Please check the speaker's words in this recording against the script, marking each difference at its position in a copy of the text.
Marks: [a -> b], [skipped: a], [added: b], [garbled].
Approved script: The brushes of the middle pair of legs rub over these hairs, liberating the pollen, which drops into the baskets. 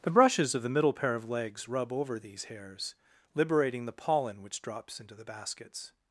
The brushes of the middle pair of legs rub over these hairs, liberating the pollen, which drops into the baskets.